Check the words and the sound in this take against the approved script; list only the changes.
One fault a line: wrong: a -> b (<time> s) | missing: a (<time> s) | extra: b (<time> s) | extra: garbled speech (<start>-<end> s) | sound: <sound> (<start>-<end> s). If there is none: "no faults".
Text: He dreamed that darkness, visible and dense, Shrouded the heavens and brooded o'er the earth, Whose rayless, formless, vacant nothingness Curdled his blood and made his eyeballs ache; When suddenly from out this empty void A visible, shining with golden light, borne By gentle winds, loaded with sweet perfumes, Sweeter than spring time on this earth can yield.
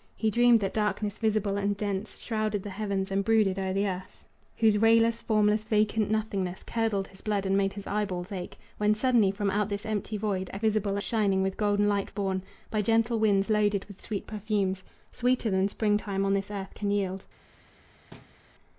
sound: thud (18.1-18.4 s)